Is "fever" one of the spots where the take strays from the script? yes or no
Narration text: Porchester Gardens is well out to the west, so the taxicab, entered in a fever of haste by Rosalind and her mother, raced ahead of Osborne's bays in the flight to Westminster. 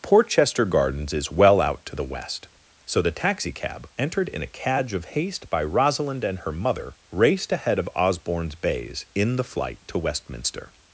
yes